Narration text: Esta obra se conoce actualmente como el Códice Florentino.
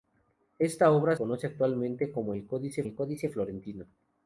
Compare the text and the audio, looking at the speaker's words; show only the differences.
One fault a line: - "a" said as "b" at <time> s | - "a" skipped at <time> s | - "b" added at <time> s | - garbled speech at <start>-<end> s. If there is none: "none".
- "se" skipped at 1.1 s
- "el Códice" added at 2.8 s